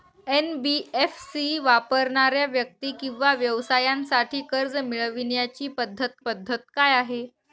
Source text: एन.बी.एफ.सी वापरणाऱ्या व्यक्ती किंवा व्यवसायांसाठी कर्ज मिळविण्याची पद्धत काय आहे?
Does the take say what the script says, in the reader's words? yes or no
no